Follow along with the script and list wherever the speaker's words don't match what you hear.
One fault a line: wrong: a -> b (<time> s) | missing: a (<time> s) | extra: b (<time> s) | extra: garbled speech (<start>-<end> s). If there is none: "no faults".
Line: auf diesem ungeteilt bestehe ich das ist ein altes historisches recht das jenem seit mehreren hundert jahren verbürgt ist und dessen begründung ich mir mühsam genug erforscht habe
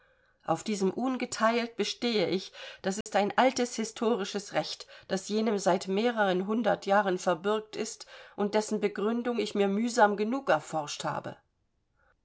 no faults